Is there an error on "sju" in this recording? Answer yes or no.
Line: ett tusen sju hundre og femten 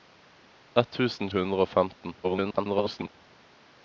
yes